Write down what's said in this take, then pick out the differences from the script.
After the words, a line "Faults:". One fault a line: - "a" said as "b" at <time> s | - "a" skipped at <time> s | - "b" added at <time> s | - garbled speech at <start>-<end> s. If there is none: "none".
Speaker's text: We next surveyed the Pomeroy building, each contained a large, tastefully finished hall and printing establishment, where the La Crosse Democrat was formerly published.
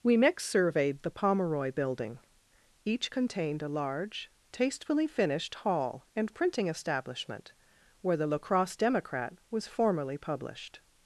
We next surveyed the Pomeroy building, each contained a large, tastefully finished hall and printing establishment, where the La Crosse Democrat was formerly published.
Faults:
none